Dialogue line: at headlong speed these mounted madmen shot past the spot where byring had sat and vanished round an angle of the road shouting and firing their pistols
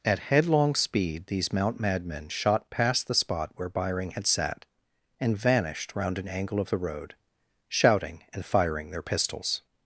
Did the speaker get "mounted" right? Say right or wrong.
wrong